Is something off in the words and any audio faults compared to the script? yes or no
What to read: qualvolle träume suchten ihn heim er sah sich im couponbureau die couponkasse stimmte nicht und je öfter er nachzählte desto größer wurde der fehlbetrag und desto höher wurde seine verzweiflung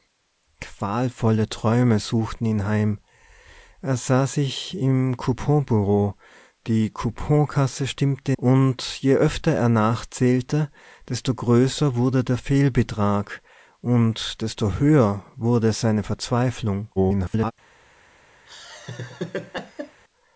yes